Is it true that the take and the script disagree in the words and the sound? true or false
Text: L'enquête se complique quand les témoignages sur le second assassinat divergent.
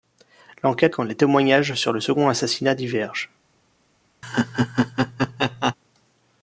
true